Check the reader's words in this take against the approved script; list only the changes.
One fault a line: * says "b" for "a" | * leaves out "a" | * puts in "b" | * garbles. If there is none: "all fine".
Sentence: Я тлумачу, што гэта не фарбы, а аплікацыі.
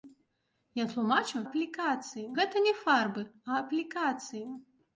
* says "аплікацыі" for "што"